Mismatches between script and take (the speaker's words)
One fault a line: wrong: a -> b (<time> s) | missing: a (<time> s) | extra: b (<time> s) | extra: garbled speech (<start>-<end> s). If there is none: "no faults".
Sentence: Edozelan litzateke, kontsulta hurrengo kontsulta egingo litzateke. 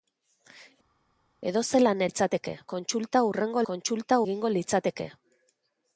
no faults